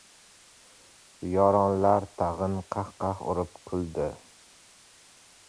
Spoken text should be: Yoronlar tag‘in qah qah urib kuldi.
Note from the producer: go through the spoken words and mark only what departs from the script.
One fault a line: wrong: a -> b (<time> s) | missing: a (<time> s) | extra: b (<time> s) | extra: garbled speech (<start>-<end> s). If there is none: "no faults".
no faults